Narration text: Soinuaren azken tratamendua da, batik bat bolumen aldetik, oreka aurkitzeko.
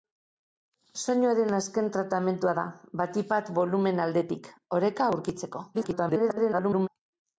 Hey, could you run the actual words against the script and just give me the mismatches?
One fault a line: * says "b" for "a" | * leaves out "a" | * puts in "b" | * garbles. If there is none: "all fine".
* garbles